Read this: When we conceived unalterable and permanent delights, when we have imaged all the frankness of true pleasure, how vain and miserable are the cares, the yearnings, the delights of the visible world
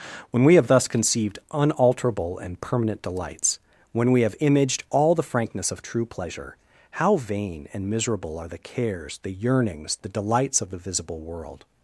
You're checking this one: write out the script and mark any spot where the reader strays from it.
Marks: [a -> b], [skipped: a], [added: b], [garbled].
When we [added: have thus] conceived unalterable and permanent delights, when we have imaged all the frankness of true pleasure, how vain and miserable are the cares, the yearnings, the delights of the visible world